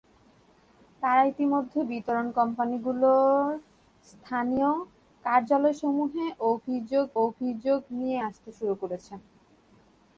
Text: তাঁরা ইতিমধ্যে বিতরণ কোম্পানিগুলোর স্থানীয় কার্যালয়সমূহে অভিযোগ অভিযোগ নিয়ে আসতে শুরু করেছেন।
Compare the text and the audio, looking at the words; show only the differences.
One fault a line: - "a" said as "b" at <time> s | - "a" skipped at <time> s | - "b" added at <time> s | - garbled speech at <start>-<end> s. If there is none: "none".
none